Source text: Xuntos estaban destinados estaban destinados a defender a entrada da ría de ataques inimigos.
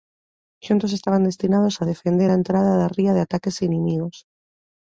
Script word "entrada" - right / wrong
right